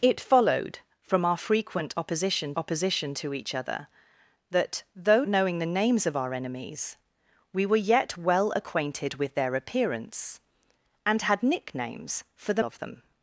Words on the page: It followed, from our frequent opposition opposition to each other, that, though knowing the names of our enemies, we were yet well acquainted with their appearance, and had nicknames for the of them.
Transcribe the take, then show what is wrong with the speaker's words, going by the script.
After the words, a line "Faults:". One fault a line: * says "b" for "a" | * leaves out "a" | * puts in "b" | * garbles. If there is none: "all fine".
It followed, from our frequent opposition opposition to each other, that, though knowing the names of our enemies, we were yet well acquainted with their appearance, and had nicknames for the of them.
Faults:
all fine